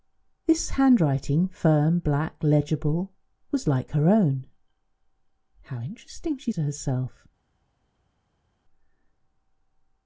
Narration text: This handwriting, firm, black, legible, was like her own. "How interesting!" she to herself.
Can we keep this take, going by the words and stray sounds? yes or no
yes